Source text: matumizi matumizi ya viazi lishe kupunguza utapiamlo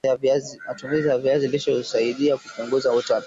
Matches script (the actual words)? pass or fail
fail